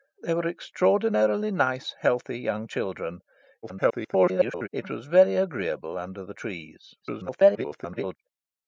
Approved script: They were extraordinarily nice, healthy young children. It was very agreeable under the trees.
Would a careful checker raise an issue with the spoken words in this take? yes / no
yes